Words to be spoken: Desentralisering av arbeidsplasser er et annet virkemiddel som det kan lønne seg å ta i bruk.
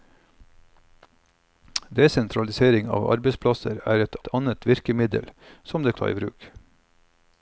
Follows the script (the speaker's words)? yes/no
no